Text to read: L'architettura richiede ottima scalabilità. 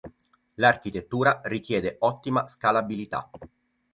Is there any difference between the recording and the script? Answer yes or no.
no